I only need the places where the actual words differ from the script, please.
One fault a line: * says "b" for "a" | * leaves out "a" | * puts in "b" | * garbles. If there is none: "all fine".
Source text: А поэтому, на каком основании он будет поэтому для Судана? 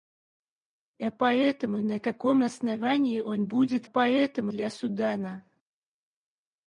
all fine